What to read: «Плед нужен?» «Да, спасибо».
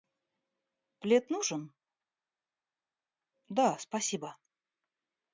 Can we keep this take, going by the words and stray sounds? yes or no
yes